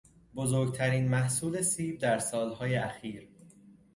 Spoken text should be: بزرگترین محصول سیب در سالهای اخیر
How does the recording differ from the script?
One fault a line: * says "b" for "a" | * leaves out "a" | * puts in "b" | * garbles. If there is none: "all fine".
all fine